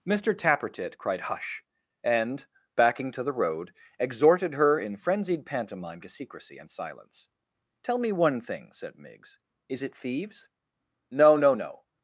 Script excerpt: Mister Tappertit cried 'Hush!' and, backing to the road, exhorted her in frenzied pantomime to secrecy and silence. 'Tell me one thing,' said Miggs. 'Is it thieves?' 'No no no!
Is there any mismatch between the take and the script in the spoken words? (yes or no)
no